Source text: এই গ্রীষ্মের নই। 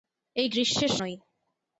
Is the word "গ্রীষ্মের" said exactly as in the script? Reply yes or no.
yes